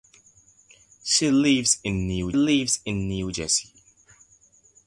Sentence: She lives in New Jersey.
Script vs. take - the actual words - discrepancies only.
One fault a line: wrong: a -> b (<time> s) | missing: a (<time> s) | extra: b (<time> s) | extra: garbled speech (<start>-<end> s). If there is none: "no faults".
extra: lives in New (2.3 s)